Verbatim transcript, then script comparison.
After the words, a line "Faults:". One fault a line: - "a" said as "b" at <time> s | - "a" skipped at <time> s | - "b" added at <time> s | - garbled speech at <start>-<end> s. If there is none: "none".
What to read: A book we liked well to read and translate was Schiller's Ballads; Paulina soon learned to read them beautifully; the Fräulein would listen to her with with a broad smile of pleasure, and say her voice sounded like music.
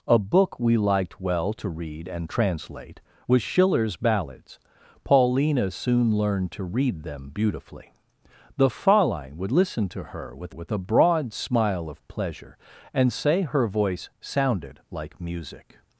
A book we liked well to read and translate was Schiller's Ballads; Paulina soon learned to read them beautifully; the Fräulein would listen to her with with a broad smile of pleasure, and say her voice sounded like music.
Faults:
none